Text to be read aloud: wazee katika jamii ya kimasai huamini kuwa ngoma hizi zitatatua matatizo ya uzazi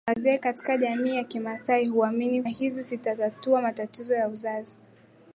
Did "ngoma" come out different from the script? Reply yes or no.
yes